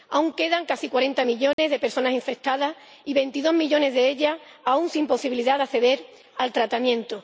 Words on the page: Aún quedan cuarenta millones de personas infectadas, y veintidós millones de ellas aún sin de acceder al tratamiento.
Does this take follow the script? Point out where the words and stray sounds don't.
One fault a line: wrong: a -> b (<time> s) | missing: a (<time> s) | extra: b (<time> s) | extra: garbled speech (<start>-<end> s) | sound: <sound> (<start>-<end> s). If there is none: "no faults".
extra: casi (0.7 s)
sound: dropout (1.5-1.6 s)
extra: posibilidad (5.1 s)